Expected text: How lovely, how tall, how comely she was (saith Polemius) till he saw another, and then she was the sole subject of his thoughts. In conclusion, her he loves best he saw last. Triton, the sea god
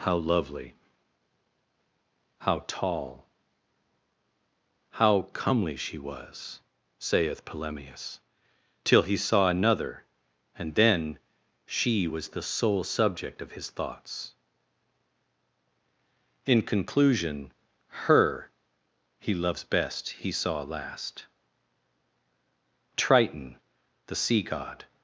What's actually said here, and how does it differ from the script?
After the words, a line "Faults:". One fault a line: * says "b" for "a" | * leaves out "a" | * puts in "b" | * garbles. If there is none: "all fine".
How lovely, how tall, how comely she was (saith Polemius) till he saw another, and then she was the sole subject of his thoughts. In conclusion, her he loves best he saw last. Triton, the sea god
Faults:
all fine